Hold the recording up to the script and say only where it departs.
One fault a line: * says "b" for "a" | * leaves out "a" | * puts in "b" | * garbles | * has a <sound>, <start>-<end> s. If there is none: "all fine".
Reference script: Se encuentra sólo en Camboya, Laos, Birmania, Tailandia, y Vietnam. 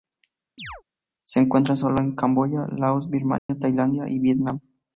* has a chirp, 0.6-0.8 s
* has a dropout, 3.4-3.5 s